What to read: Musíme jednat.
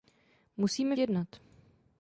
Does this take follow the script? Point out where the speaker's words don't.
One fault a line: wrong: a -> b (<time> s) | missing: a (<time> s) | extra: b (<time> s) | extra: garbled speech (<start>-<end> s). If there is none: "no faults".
no faults